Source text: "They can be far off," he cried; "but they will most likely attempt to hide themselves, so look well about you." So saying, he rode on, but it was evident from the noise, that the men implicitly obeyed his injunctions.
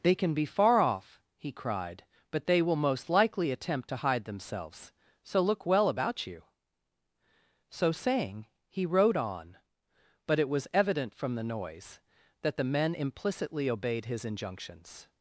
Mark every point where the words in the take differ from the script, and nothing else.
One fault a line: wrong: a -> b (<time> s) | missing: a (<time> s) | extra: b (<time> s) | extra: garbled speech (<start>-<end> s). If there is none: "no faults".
no faults